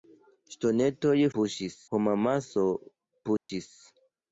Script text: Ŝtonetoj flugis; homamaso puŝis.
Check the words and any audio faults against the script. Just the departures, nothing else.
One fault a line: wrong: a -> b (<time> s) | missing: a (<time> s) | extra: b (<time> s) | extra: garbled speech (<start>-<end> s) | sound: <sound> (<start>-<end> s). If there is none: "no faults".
wrong: flugis -> puŝis (1.3 s)
sound: dropout (3.4-3.5 s)